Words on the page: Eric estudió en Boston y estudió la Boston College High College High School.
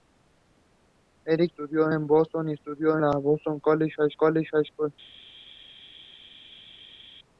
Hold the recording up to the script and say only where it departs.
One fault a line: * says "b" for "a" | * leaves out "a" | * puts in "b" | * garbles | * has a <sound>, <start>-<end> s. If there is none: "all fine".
all fine